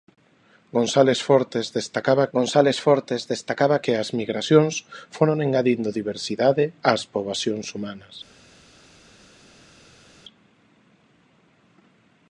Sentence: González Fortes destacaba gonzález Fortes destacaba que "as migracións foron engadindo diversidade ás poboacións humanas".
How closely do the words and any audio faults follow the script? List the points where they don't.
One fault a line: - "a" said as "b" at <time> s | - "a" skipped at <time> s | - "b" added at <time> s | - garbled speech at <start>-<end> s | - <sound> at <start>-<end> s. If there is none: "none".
none